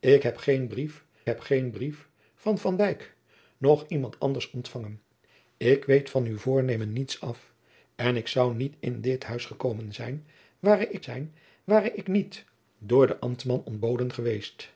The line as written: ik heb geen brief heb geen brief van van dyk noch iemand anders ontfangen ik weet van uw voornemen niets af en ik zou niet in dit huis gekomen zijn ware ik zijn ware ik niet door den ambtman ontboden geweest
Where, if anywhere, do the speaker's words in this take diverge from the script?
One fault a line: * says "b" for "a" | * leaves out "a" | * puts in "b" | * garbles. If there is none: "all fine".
all fine